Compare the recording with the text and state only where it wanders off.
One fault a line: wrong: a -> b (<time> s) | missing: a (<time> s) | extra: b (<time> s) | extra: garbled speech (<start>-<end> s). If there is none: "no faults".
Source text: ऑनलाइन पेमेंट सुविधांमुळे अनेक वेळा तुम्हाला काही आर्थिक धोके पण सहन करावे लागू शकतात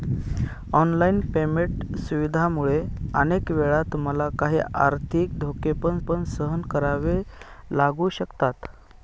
extra: पण (6.1 s)